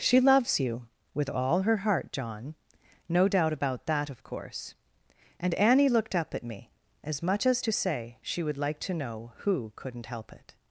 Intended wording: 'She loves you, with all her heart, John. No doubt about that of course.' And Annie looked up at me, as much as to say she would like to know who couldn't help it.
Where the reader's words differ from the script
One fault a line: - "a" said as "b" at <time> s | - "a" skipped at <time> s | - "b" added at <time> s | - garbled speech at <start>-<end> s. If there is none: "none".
none